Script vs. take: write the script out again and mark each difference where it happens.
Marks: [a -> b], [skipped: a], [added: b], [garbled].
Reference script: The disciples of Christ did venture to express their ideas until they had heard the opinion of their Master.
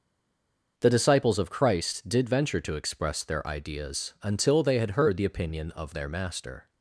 The disciples of Christ did venture to express their ideas until they had heard the opinion of their Master.